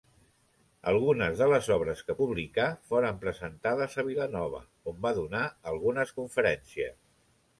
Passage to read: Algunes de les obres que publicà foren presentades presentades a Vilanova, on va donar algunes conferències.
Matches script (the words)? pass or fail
fail